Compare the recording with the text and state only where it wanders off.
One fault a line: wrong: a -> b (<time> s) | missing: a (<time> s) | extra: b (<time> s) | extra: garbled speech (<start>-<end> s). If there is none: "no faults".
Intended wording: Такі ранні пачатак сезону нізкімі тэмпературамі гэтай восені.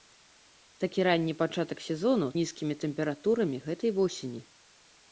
no faults